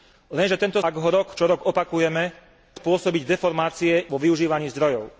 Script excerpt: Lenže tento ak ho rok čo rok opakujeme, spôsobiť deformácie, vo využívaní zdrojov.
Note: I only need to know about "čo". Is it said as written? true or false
true